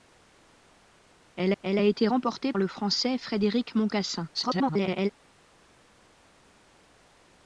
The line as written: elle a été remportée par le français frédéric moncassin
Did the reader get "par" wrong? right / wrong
wrong